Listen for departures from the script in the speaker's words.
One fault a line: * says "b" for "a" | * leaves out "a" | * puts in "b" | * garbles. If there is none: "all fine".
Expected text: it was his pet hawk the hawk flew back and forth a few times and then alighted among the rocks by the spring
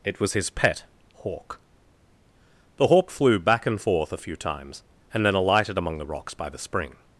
all fine